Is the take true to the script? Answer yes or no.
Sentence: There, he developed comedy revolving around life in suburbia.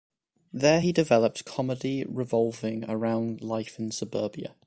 yes